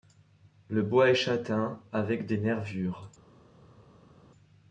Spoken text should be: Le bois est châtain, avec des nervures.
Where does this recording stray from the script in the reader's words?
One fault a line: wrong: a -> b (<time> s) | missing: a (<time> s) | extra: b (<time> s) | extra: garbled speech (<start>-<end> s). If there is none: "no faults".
no faults